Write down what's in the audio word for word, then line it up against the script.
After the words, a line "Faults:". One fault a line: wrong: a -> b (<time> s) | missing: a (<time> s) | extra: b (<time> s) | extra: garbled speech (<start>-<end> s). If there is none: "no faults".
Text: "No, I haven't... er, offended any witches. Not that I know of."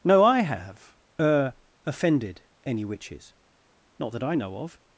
"No, I have... er, offended any witches. Not that I know of."
Faults:
wrong: haven't -> have (0.4 s)